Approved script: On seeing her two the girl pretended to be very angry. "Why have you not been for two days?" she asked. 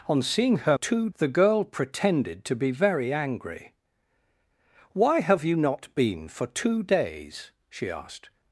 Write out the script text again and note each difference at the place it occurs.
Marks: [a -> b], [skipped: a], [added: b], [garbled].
On seeing her two the girl pretended to be very angry. "Why have you not been for two days?" she asked.